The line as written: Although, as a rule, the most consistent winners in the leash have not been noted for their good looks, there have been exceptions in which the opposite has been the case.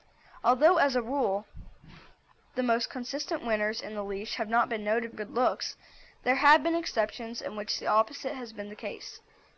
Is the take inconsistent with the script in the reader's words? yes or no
yes